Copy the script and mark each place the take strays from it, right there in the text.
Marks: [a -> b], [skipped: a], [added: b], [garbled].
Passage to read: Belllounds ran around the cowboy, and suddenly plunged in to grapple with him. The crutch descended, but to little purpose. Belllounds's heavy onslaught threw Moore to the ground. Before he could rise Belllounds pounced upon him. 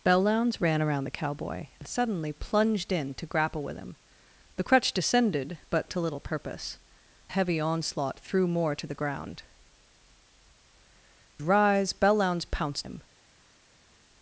Belllounds ran around the cowboy, and suddenly plunged in to grapple with him. The crutch descended, but to little purpose. [skipped: Belllounds's] heavy onslaught threw Moore to the ground. [skipped: Before he could] rise Belllounds pounced [skipped: upon] him.